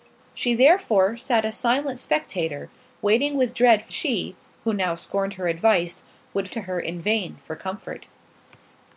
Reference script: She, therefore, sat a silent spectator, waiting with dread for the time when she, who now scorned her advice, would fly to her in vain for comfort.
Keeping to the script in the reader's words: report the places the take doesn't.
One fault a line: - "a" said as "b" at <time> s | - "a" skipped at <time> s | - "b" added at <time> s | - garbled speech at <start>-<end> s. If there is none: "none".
- "the time when" skipped at 3.9 s
- "fly" skipped at 6.5 s